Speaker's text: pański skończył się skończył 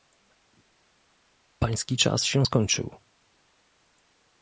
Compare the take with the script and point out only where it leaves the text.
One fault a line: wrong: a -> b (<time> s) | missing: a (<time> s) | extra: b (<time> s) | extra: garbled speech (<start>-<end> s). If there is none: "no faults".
wrong: skończył -> czas (2.0 s)